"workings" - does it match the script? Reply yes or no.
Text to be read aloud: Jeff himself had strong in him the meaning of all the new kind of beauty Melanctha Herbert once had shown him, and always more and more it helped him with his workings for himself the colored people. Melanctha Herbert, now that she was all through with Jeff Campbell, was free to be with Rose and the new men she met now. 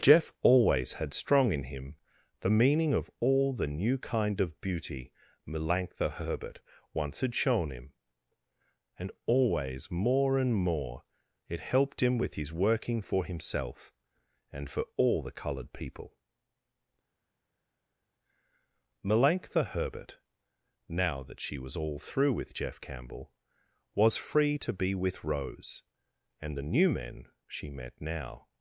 no